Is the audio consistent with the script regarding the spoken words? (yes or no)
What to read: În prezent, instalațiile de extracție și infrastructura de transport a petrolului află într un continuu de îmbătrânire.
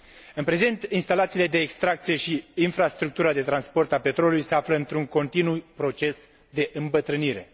no